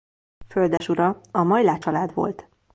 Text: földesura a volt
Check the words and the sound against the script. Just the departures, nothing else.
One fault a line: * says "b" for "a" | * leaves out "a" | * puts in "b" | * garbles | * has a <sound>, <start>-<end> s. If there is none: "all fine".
* has a dropout, 0.8-0.8 s
* puts in "majláth család"